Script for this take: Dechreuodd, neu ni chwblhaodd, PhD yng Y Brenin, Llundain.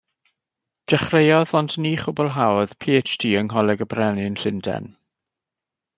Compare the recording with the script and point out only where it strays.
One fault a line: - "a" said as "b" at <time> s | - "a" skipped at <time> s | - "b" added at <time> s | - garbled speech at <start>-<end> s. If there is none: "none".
- "neu" said as "ond" at 1.6 s
- "Ngholeg" added at 3.5 s